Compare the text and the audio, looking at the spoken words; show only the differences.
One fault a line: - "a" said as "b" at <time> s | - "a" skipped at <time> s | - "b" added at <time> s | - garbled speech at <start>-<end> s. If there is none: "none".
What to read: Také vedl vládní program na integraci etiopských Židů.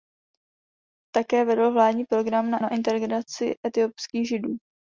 - "na" added at 2.6 s